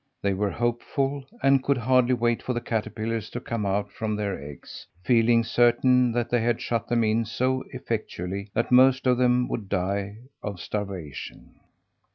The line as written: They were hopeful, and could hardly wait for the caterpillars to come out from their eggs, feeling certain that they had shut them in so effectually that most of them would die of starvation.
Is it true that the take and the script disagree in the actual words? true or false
false